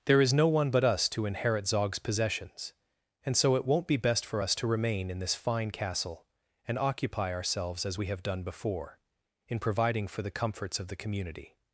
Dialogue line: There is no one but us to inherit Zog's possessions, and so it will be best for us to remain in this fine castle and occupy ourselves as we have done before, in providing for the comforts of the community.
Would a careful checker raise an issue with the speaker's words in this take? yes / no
yes